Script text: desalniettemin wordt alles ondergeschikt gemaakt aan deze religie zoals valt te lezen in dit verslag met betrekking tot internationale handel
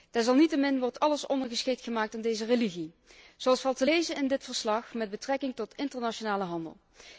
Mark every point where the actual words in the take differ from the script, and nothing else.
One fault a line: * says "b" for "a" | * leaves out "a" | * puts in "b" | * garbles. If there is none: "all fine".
all fine